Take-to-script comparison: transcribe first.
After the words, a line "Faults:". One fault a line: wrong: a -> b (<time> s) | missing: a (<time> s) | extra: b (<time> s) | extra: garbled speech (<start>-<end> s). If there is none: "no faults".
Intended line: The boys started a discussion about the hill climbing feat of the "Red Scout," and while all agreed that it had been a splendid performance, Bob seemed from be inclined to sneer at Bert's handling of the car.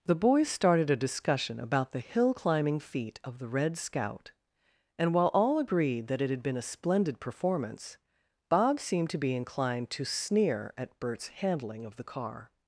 The boys started a discussion about the hill climbing feat of the "Red Scout," and while all agreed that it had been a splendid performance, Bob seemed to be inclined to sneer at Bert's handling of the car.
Faults:
wrong: from -> to (9.1 s)